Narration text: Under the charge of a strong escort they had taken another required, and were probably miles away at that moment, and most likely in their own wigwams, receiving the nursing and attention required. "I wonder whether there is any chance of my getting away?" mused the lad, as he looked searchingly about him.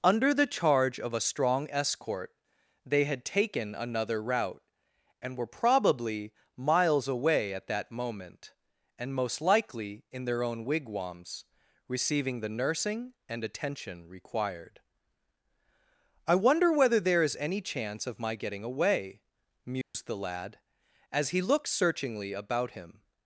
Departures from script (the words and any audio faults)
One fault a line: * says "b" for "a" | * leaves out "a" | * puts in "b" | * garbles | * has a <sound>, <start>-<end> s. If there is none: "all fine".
* says "route" for "required"
* has a dropout, 19.8-19.9 s